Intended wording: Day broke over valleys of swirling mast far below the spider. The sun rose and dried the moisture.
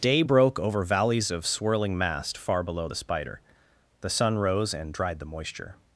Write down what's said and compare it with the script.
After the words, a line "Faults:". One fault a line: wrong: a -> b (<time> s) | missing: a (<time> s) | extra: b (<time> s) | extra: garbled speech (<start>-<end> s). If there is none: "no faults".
Day broke over valleys of swirling mast far below the spider. The sun rose and dried the moisture.
Faults:
no faults